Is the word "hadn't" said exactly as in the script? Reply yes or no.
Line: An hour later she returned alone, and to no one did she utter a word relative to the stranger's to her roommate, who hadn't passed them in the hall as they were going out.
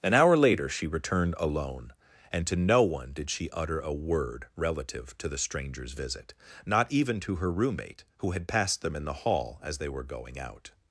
no